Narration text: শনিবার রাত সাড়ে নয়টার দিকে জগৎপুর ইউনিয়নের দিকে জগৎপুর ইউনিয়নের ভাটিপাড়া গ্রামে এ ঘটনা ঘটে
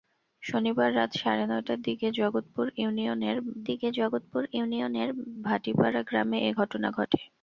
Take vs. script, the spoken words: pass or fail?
pass